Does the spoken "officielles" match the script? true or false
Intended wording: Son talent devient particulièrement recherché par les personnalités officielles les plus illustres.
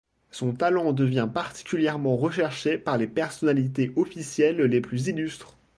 true